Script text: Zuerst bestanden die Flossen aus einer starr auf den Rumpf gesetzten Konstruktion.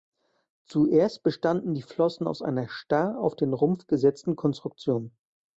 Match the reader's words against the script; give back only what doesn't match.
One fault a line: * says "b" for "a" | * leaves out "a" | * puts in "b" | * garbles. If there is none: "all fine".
all fine